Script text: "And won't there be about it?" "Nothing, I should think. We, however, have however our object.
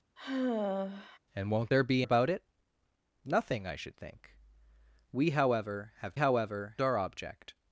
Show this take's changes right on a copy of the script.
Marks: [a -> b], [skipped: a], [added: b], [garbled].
"And won't there be about it?" "Nothing, I should think. We, however, have however our object.